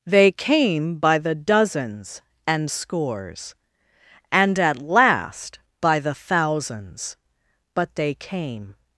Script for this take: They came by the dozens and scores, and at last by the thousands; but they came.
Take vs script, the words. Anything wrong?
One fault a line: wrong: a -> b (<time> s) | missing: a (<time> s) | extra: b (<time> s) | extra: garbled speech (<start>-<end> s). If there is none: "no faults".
no faults